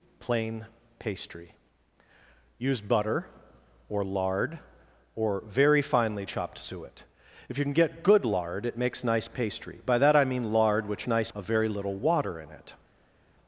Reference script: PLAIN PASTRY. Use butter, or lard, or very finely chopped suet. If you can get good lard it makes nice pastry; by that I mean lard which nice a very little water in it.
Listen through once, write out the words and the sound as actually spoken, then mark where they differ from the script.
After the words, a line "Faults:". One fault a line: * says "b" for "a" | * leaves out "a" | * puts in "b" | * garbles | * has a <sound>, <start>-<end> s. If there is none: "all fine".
PLAIN PASTRY. Use butter, or lard, or very finely chopped suet. If you can get good lard it makes nice pastry; by that I mean lard which nice a very little water in it.
Faults:
all fine